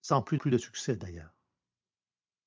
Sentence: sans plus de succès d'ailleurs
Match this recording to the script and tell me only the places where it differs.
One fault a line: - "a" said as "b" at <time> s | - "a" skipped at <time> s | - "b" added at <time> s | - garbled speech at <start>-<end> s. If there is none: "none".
- "plus" added at 0.3 s